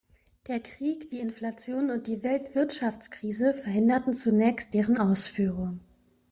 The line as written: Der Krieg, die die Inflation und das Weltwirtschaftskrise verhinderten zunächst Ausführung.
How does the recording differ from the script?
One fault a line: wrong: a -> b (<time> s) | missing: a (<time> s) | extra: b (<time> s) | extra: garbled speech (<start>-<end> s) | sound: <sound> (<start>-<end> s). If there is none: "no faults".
missing: die (1.2 s)
wrong: das -> die (2.1 s)
extra: deren (4.7 s)